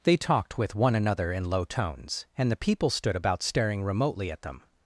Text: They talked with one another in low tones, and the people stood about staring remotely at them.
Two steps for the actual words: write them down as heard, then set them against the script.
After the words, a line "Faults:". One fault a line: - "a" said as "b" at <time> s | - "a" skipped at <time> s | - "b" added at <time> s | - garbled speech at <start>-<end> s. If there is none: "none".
They talked with one another in low tones, and the people stood about staring remotely at them.
Faults:
none